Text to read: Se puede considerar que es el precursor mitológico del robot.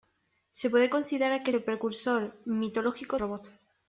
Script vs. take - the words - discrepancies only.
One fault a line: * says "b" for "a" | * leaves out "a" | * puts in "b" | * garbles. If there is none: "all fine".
* leaves out "es"
* leaves out "del"